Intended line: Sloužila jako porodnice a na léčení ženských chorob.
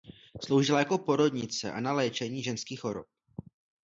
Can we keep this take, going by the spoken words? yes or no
yes